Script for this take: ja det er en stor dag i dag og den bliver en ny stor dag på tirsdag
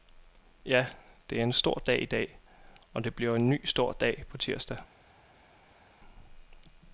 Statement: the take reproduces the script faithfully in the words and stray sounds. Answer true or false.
false